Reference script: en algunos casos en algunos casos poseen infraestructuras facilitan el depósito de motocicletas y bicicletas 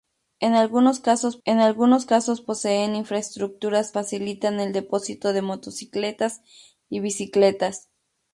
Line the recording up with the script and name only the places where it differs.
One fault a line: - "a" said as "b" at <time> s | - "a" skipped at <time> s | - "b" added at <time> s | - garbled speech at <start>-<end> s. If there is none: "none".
none